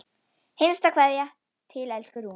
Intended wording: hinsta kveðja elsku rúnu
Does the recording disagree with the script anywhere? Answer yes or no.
yes